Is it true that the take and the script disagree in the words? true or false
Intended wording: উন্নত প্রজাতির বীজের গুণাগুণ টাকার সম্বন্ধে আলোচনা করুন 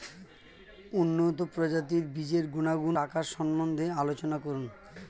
false